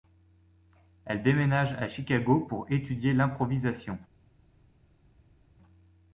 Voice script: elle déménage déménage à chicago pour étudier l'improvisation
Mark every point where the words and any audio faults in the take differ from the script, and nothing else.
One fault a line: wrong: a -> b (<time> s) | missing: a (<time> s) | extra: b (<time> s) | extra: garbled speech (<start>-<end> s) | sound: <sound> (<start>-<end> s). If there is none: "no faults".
missing: déménage (1.7 s)